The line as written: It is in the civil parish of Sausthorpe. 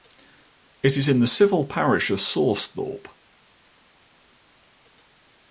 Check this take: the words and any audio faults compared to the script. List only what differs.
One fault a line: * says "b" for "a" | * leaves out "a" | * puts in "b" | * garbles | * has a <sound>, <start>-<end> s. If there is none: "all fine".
all fine